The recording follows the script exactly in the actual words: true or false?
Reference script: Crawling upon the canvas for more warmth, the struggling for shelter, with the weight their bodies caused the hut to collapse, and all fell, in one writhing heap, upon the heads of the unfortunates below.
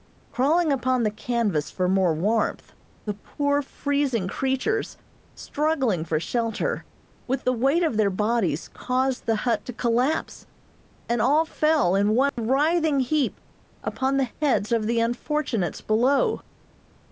false